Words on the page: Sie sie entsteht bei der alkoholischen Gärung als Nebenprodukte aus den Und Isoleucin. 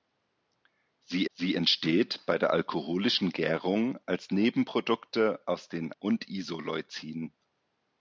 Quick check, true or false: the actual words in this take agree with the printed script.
true